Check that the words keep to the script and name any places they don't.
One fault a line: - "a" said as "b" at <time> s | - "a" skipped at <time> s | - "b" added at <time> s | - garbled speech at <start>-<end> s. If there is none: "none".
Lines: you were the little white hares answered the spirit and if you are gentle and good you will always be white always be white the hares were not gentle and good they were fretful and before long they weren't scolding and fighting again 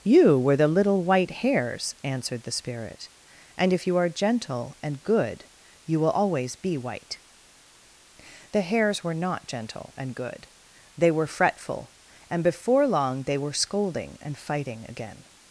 - "always be white" skipped at 7.2 s
- "weren't" said as "were" at 13.4 s